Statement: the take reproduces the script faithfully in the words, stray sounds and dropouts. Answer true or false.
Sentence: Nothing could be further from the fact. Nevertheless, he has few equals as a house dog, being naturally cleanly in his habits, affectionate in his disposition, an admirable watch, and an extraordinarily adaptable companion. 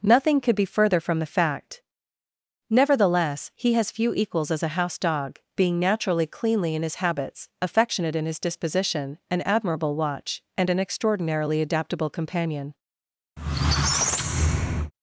false